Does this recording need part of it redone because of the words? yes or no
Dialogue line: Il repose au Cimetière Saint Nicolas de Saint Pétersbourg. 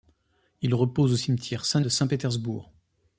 yes